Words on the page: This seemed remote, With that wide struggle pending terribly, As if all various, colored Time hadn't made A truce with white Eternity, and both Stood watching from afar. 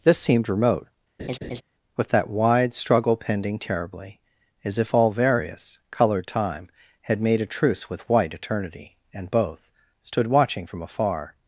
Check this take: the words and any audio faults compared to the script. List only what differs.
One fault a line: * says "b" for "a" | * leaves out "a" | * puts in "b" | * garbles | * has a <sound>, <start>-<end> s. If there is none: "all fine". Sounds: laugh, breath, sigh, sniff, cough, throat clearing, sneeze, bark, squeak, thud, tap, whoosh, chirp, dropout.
* has a laugh, 1.2-1.6 s
* says "had" for "hadn't"